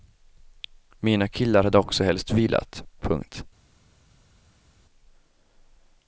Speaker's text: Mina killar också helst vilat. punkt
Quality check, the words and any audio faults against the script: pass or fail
fail